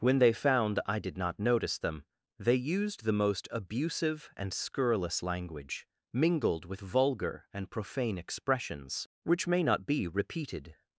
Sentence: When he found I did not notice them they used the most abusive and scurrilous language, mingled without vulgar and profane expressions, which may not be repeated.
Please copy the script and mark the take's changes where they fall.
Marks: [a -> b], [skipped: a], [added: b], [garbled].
When [he -> they] found I did not notice them they used the most abusive and scurrilous language, mingled [without -> with] vulgar and profane expressions, which may not be repeated.